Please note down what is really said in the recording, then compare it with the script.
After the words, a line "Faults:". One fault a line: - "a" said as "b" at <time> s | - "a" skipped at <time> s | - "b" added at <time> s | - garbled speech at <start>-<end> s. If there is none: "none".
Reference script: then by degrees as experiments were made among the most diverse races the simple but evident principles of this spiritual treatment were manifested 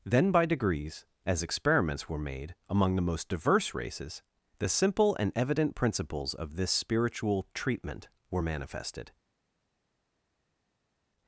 then by degrees as experiments were made among the most diverse races the simple and evident principles of this spiritual treatment were manifested
Faults:
- "but" said as "and" at 5.2 s